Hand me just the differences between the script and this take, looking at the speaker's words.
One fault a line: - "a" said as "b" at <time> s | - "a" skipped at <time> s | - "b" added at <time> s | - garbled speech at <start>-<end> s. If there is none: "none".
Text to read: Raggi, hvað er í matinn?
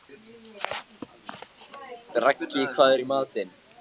none